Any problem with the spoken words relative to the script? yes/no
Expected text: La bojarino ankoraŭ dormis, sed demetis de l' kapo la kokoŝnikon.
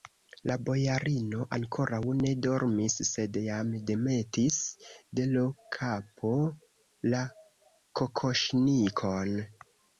yes